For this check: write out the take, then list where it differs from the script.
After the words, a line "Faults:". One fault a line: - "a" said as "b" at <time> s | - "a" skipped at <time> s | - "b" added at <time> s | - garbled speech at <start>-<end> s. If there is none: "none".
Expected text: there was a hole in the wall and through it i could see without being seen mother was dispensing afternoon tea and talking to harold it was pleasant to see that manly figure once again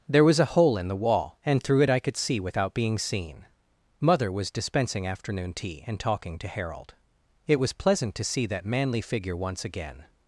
there was a hole in the wall and through it i could see without being seen mother was dispensing afternoon tea and talking to harold it was pleasant to see that manly figure once again
Faults:
none